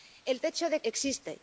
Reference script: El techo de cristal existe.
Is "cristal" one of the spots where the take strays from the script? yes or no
yes